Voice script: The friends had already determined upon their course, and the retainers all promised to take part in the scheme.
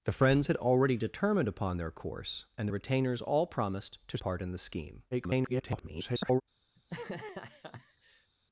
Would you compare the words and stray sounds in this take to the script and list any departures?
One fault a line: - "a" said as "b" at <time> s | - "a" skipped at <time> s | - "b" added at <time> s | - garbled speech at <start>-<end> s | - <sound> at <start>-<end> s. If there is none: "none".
- "take" skipped at 4.2 s
- garbled speech at 5.1-6.4 s
- laugh at 6.8-8.3 s